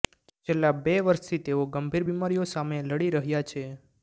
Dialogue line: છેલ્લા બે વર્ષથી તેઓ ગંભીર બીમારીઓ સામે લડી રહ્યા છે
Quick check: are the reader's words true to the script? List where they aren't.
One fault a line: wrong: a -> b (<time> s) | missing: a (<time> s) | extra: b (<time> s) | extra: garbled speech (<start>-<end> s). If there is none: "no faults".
no faults